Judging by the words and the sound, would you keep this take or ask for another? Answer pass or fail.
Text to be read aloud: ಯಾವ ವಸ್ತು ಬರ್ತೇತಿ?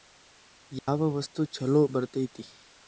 fail